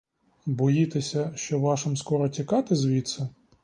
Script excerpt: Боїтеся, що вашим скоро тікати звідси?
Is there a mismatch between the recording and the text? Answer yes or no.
no